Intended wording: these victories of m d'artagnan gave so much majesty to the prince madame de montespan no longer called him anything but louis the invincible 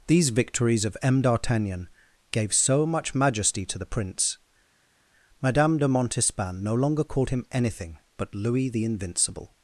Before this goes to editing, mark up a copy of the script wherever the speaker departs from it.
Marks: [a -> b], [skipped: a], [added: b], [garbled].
these victories of m d'artagnan gave so much majesty to the prince madame de montespan no longer called him anything but louis the invincible